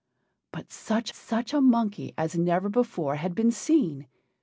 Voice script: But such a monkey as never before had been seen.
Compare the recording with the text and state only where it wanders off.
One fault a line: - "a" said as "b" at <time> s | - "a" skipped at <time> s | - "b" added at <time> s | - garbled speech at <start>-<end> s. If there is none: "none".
- "such" added at 1.1 s